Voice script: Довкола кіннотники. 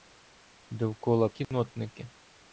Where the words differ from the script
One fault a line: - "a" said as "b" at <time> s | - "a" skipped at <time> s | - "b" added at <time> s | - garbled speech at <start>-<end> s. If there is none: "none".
none